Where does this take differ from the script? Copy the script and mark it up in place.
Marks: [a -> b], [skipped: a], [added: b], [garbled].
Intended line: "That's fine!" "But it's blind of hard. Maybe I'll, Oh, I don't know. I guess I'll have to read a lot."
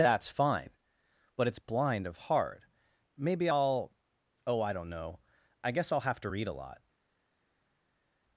"That's fine!" "But it's blind of hard. Maybe I'll, Oh, I don't know. I guess I'll have to read a lot."